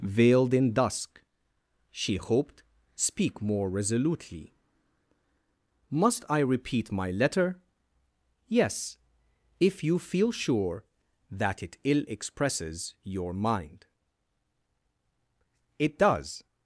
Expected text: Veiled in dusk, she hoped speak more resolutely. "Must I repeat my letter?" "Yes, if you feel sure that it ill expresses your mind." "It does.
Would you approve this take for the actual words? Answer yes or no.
yes